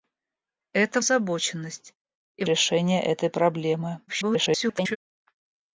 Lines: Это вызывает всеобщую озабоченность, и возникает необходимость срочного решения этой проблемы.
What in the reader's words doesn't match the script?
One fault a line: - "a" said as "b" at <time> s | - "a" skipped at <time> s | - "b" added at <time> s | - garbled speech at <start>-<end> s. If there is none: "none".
- "вызывает всеобщую" skipped at 1.0 s
- "возникает необходимость срочного" skipped at 2.4 s
- garbled speech at 4.1-5.0 s